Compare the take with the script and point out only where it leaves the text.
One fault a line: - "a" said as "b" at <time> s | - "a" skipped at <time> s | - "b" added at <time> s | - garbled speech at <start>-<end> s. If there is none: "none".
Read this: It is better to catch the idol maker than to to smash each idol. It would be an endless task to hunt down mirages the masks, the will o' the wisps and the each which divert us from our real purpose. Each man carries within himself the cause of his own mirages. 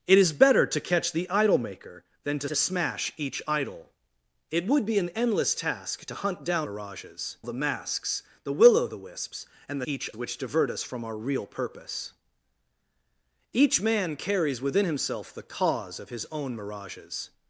none